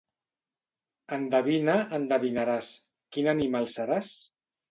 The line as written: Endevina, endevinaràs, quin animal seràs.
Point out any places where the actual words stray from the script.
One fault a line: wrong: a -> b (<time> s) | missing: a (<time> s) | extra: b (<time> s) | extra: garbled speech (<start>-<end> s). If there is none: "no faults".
no faults